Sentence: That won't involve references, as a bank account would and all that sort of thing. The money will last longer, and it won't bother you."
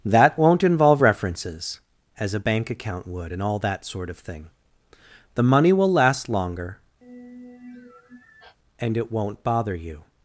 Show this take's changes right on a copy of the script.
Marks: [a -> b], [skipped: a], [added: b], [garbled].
That won't involve references, as a bank account would and all that sort of thing. The money will last longer, and it won't bother you."